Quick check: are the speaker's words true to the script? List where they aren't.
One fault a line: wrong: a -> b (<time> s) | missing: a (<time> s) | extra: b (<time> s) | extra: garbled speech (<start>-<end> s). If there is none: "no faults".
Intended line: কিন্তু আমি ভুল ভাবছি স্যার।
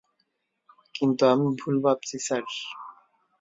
no faults